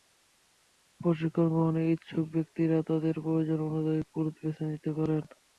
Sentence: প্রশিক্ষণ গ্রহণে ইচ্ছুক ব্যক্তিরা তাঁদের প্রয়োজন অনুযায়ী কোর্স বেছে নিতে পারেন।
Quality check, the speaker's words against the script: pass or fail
pass